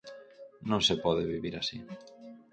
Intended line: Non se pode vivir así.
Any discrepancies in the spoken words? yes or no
no